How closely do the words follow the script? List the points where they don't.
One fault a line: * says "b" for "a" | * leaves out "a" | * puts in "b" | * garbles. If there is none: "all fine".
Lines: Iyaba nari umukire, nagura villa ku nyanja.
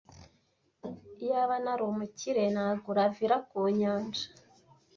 all fine